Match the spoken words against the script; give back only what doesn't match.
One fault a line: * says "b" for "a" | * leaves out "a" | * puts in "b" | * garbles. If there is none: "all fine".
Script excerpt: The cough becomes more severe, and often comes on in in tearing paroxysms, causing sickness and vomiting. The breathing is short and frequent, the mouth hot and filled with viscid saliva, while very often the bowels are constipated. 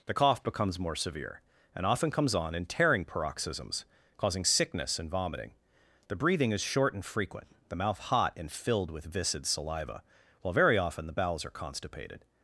* leaves out "in"